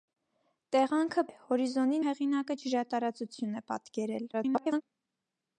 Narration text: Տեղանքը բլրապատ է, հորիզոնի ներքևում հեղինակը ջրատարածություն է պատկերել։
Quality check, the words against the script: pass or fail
fail